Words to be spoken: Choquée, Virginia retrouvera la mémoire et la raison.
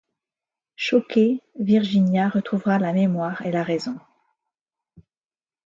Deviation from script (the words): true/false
false